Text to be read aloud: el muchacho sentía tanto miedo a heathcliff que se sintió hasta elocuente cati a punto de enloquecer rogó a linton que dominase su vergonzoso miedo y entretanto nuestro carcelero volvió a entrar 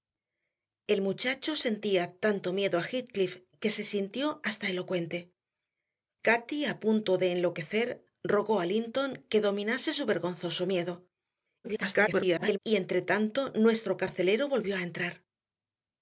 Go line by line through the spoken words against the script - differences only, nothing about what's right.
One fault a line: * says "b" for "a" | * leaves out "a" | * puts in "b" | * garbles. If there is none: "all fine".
* garbles